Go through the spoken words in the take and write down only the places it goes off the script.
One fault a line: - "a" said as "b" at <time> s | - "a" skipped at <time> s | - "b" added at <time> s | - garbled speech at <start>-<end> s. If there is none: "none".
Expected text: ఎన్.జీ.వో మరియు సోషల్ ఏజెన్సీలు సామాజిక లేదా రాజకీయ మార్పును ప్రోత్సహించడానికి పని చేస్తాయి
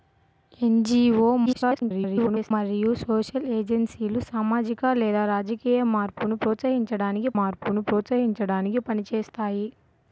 - garbled speech at 1.5-2.5 s
- "మార్పును ప్రోత్సహించడానికి" added at 7.4 s